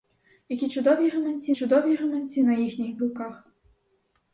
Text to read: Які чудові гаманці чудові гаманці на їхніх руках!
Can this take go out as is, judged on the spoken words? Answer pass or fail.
pass